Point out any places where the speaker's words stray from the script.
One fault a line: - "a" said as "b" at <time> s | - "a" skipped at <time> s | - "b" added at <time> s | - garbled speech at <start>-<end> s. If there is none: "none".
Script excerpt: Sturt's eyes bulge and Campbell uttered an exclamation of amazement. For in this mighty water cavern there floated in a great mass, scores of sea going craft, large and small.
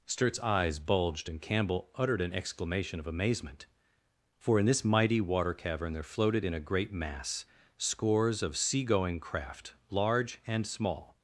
- "bulge" said as "bulged" at 0.8 s